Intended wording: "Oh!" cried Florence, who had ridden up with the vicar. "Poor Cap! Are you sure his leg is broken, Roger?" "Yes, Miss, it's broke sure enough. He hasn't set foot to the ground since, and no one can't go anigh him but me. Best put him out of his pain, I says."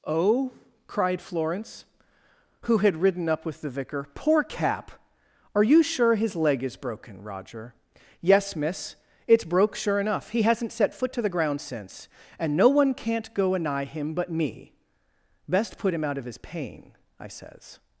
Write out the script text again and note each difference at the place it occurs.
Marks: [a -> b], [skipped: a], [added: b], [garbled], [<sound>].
"Oh!" cried Florence, who had ridden up with the vicar. "Poor Cap! Are you sure his leg is broken, Roger?" "Yes, Miss, it's broke sure enough. He hasn't set foot to the ground since, and no one can't go anigh him but me. Best put him out of his pain, I says."